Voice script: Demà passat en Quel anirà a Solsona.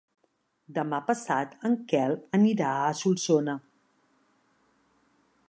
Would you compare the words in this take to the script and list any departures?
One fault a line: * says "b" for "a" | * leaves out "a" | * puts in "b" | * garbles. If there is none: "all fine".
all fine